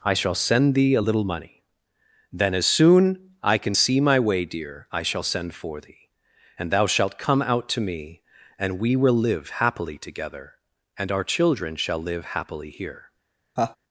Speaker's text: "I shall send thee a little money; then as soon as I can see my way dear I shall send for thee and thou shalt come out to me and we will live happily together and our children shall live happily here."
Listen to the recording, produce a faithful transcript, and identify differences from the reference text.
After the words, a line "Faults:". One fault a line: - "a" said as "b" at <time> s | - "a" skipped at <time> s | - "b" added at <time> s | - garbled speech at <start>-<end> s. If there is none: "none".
"I shall send thee a little money; then as soon I can see my way dear I shall send for thee and thou shalt come out to me and we will live happily together and our children shall live happily here."
Faults:
- "as" skipped at 3.3 s